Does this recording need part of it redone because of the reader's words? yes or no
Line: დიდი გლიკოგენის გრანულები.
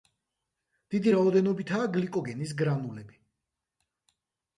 yes